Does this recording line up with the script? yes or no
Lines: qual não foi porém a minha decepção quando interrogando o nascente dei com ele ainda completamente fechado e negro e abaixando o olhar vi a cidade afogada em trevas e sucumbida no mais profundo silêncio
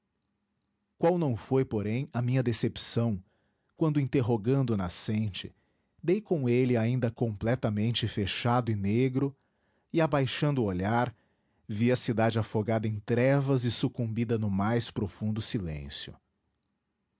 yes